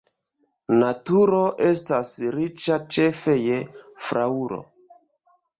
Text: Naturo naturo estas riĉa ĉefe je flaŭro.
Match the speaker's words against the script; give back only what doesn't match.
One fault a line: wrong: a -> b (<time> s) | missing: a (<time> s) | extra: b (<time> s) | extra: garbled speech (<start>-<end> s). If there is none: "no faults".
missing: naturo (1.4 s)